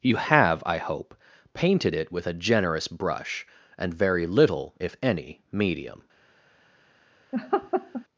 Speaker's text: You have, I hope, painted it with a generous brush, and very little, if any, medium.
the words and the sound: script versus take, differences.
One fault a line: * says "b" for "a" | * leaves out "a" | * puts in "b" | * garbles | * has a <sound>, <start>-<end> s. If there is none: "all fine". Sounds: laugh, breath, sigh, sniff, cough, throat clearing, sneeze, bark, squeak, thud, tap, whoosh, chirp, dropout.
* has a laugh, 7.3-8.0 s